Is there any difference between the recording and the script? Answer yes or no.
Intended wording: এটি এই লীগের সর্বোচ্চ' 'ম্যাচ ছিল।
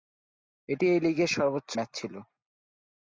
no